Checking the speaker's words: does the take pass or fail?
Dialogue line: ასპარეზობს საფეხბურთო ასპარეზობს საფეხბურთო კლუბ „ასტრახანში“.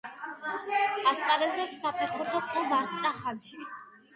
fail